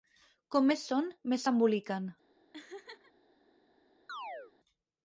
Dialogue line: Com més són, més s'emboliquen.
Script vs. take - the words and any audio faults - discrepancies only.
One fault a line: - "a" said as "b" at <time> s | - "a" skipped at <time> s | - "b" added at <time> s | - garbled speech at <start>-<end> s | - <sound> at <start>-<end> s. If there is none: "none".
- laugh at 2.5-3.1 s
- chirp at 4.1-4.5 s